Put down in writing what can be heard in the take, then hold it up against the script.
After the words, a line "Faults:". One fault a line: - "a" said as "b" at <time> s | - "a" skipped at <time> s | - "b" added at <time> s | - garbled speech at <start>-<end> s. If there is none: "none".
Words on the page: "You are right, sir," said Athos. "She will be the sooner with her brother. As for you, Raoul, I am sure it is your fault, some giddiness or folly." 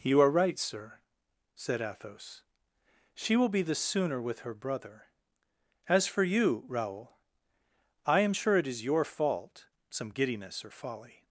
"You are right, sir," said Athos. "She will be the sooner with her brother. As for you, Raoul, I am sure it is your fault, some giddiness or folly."
Faults:
none